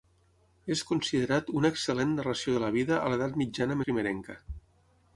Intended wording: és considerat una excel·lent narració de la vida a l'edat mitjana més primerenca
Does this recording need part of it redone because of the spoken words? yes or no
yes